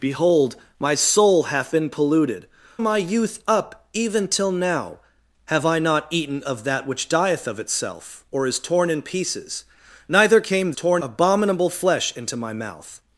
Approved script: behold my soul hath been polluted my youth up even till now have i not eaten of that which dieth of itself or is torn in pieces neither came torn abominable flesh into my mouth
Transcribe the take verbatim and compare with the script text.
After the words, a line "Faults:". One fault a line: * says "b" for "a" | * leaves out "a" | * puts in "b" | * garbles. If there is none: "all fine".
behold my soul hath been polluted my youth up even till now have i not eaten of that which dieth of itself or is torn in pieces neither came torn abominable flesh into my mouth
Faults:
all fine